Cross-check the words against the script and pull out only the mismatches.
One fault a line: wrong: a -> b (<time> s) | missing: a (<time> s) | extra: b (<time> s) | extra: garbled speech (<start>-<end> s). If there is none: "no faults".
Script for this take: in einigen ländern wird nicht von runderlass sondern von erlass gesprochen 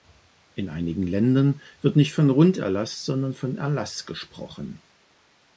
no faults